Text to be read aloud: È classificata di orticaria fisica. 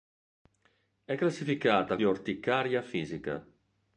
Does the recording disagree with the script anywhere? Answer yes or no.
no